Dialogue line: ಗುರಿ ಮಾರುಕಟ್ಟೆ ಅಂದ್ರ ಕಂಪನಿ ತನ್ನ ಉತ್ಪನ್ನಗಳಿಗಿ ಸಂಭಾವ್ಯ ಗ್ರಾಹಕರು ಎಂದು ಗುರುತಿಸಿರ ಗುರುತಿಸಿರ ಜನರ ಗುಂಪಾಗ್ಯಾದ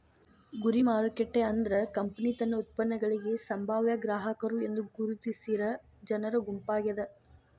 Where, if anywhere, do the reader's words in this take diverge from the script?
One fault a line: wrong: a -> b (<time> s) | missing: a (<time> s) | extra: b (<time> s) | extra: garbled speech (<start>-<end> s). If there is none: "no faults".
missing: ಗುರುತಿಸಿರ (5.6 s)